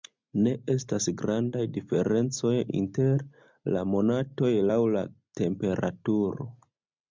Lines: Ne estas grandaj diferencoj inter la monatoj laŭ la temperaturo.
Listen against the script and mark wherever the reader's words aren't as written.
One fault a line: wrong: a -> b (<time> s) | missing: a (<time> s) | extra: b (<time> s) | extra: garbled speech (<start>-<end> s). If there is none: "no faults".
no faults